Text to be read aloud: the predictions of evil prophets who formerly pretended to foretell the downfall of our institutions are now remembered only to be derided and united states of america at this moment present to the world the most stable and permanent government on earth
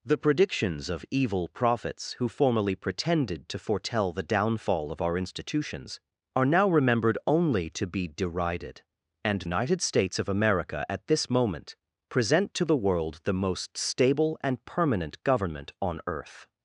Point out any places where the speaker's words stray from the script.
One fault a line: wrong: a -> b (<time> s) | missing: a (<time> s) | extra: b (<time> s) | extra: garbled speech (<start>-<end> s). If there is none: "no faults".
no faults